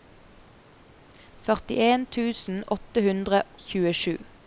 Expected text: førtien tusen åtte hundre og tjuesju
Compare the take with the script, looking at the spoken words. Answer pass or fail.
fail